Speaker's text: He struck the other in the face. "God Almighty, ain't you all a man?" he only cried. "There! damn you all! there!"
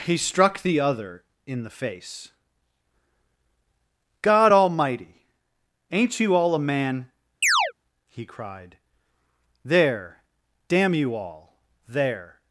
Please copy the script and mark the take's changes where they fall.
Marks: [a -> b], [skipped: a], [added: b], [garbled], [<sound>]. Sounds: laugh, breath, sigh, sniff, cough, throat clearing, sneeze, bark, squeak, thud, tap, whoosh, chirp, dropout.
He struck the other in the face. "God Almighty, ain't you all a man?" [chirp] he [skipped: only] cried. "There! damn you all! there!"